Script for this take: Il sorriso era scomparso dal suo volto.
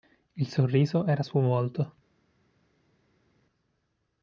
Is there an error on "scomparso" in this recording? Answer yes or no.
yes